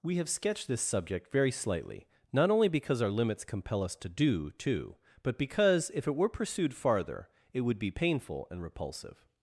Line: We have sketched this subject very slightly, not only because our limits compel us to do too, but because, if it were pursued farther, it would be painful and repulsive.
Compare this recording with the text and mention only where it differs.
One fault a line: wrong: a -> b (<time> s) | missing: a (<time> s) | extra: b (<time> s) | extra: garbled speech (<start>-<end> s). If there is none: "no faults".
no faults